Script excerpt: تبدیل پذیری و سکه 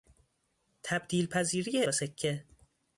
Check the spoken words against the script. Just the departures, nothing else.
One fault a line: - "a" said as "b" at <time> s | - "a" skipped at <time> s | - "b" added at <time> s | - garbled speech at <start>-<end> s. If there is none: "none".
none